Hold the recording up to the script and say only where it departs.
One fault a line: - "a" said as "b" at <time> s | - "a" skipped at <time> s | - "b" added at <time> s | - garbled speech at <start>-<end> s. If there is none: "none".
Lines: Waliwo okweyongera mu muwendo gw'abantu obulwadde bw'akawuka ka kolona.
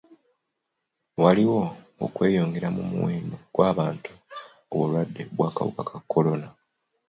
none